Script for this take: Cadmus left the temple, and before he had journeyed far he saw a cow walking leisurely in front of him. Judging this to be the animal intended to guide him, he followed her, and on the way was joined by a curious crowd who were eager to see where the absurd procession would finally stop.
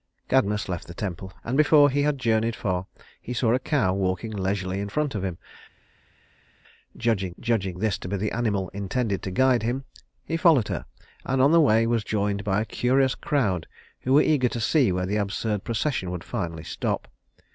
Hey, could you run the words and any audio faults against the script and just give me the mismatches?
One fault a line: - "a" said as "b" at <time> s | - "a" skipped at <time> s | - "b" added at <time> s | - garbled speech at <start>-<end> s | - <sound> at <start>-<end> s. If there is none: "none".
- "judging" added at 7.4 s